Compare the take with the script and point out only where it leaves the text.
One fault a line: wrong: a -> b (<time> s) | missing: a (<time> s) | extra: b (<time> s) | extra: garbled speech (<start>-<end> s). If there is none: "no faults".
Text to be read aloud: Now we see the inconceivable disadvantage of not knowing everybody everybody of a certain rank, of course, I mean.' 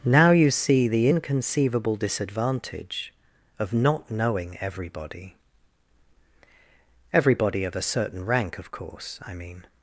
wrong: we -> you (0.3 s)